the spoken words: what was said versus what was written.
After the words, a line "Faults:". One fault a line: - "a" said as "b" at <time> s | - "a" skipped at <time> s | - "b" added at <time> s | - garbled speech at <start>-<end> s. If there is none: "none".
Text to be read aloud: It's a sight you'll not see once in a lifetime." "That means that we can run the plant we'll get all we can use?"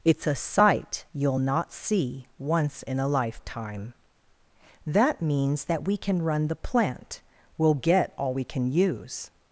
It's a sight you'll not see once in a lifetime." "That means that we can run the plant we'll get all we can use?"
Faults:
none